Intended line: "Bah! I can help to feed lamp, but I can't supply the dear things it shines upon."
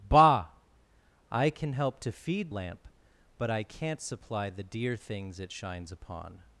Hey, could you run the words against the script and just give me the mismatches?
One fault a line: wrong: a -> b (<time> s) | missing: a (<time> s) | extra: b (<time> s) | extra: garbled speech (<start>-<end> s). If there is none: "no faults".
no faults